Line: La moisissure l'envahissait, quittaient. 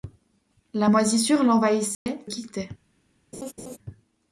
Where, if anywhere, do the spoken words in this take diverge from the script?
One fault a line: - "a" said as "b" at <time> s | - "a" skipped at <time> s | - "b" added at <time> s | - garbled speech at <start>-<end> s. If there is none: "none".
none